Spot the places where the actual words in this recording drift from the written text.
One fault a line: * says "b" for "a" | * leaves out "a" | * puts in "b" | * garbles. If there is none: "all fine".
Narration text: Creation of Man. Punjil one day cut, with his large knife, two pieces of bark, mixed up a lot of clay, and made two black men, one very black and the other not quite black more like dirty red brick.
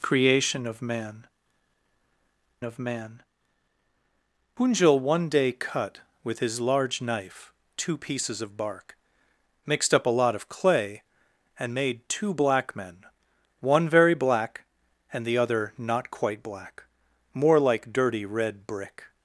* puts in "of Man"